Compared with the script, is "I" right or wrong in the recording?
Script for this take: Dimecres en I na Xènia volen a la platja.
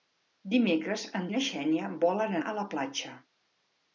right